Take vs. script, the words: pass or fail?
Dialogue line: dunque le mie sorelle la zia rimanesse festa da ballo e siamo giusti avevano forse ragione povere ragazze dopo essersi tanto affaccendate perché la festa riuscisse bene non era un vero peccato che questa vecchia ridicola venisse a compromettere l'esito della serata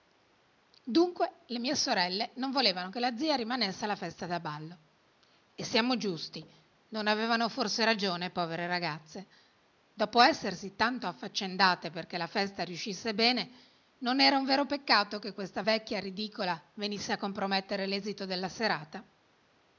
fail